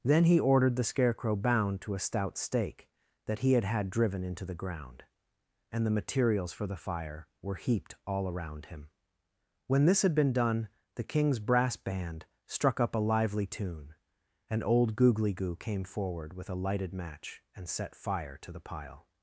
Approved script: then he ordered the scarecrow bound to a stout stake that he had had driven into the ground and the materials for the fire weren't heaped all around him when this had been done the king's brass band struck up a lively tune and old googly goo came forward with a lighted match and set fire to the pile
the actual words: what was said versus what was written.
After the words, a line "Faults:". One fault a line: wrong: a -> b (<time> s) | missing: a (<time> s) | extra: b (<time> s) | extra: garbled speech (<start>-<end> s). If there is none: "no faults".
then he ordered the scarecrow bound to a stout stake that he had had driven into the ground and the materials for the fire were heaped all around him when this had been done the king's brass band struck up a lively tune and old googly goo came forward with a lighted match and set fire to the pile
Faults:
wrong: weren't -> were (7.4 s)